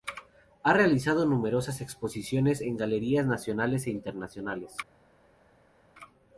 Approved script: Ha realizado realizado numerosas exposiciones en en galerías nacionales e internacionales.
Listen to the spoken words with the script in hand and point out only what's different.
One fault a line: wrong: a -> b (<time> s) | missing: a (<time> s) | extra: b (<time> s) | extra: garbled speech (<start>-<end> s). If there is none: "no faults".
missing: realizado (1.3 s)
missing: en (2.8 s)